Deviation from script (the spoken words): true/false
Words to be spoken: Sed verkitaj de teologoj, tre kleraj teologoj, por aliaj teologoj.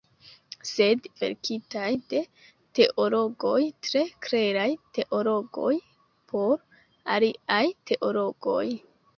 false